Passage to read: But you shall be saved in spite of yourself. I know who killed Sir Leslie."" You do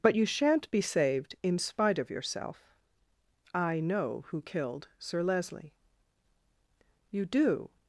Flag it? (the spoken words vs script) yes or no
yes